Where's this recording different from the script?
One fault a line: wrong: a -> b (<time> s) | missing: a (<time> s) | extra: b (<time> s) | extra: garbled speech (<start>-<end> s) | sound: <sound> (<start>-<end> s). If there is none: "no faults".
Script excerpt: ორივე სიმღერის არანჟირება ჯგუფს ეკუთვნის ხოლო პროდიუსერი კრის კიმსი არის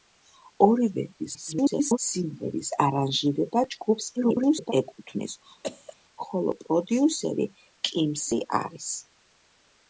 extra: garbled speech (1.2-2.0 s)
extra: garbled speech (4.2-4.7 s)
sound: cough (5.6-6.0 s)
missing: კრის (7.5 s)